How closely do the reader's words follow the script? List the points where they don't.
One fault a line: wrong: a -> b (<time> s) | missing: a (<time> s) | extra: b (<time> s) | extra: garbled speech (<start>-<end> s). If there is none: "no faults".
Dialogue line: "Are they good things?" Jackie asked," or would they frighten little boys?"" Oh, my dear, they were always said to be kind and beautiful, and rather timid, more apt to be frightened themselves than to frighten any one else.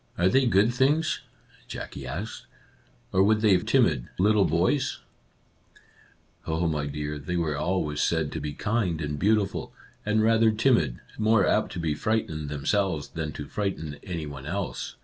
wrong: frighten -> timid (3.6 s)